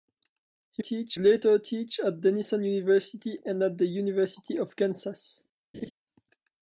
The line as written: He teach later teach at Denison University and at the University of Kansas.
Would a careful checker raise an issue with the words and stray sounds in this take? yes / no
yes